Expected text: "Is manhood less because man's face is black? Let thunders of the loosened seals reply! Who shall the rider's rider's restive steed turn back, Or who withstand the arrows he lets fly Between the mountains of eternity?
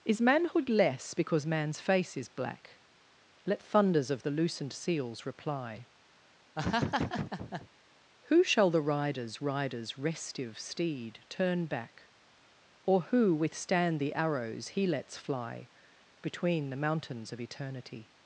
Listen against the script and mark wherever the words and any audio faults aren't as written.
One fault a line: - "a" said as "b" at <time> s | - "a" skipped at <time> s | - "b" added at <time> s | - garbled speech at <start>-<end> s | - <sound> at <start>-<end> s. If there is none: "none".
- laugh at 6.6-7.7 s